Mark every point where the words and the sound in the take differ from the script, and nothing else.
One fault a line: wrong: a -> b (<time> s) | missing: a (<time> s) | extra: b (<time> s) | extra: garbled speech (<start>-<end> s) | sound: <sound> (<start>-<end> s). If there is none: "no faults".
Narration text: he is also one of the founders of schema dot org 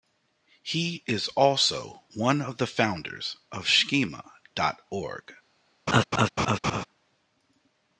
sound: laugh (5.9-6.8 s)